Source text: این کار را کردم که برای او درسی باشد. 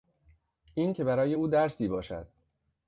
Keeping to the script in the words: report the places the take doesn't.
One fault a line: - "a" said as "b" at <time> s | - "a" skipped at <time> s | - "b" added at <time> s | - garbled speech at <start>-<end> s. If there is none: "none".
- "کار را کردم" skipped at 0.9 s